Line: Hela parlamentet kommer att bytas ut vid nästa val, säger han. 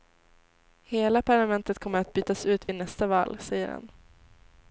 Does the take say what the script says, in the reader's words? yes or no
yes